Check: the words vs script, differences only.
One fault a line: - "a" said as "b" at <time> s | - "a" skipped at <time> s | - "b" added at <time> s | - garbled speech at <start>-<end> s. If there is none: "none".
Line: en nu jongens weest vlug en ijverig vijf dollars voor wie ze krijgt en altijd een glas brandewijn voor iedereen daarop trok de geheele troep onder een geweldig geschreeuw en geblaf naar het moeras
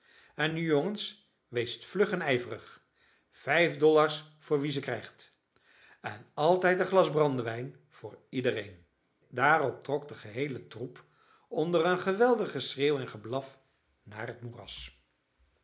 none